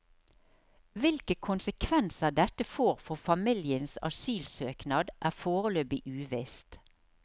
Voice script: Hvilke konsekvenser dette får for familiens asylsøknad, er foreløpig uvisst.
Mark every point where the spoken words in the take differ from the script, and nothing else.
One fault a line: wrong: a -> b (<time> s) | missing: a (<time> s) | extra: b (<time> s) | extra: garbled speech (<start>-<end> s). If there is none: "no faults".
no faults